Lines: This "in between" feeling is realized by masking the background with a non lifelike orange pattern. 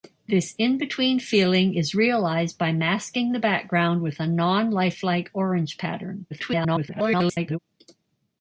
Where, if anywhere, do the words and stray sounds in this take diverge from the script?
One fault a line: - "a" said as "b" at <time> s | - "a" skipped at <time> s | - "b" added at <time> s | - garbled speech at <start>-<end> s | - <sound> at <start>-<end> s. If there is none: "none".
- garbled speech at 6.3-7.6 s